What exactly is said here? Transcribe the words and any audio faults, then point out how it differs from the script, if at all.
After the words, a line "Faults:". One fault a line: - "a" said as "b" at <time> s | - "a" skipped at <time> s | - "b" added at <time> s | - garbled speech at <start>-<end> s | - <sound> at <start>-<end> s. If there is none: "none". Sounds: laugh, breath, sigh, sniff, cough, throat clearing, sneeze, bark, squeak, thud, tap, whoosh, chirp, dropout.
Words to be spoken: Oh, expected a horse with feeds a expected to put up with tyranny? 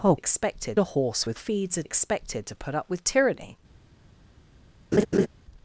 Oh, expected a horse with feeds a expected to put up with tyranny?
Faults:
- laugh at 4.9-5.3 s